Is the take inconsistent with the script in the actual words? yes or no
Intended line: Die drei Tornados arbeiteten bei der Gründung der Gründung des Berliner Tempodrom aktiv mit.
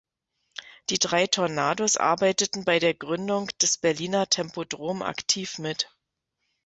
yes